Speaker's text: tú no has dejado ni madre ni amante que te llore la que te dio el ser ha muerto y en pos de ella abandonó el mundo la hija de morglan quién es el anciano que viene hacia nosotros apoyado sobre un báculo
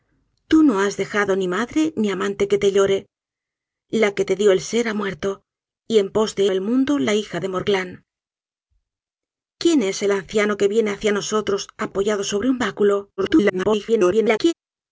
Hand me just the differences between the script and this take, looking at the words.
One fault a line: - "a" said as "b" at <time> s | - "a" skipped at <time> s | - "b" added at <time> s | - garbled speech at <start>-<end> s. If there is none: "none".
- "ella abandonó" skipped at 6.5 s
- garbled speech at 13.2-14.5 s